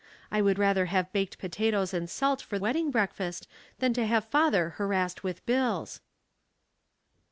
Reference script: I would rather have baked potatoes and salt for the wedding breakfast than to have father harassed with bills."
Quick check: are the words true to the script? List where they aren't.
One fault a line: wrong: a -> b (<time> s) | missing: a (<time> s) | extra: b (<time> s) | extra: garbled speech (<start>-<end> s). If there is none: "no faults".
missing: the (2.6 s)